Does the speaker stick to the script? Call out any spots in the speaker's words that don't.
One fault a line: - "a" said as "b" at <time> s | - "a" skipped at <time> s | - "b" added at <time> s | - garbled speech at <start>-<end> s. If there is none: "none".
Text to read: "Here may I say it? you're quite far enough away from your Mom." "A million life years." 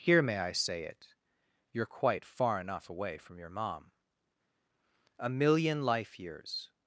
none